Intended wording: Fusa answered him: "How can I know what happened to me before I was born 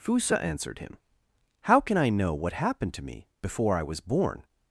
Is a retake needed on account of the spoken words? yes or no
no